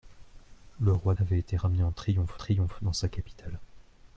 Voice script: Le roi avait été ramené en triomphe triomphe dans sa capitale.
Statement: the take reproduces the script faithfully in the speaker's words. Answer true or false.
true